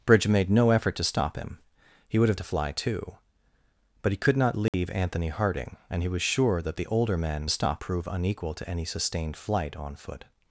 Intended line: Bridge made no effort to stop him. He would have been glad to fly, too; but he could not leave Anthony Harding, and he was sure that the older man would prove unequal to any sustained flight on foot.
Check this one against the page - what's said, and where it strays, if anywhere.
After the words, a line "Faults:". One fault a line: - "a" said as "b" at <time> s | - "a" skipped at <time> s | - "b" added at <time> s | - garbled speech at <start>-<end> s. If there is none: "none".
Bridge made no effort to stop him. He would have to fly, too; but he could not leave Anthony Harding, and he was sure that the older man stop prove unequal to any sustained flight on foot.
Faults:
- "been glad" skipped at 2.4 s
- "would" said as "stop" at 7.5 s